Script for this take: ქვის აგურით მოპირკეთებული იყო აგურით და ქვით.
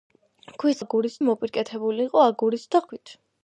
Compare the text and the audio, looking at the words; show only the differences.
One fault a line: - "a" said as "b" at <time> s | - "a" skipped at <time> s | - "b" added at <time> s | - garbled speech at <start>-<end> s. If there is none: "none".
none